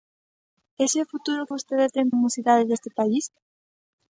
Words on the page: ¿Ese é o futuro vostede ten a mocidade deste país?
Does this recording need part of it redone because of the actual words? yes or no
no